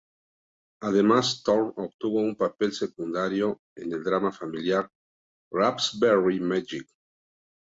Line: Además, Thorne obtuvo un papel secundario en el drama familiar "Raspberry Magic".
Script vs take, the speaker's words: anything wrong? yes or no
no